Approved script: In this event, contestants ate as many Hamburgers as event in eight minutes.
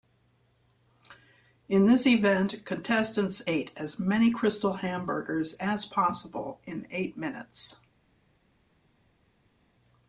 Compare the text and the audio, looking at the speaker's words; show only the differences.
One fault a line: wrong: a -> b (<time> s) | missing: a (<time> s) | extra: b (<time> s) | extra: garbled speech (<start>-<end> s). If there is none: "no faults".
extra: Krystal (4.3 s)
wrong: event -> possible (5.9 s)